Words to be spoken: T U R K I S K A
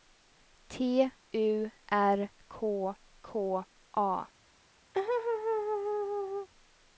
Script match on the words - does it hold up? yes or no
no